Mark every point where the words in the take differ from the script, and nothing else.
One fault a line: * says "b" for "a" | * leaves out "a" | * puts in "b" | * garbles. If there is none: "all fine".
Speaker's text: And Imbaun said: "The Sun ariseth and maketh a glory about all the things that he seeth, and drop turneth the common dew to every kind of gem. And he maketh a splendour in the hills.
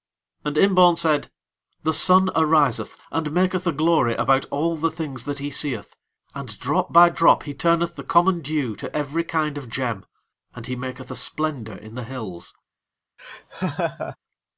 * puts in "by drop he"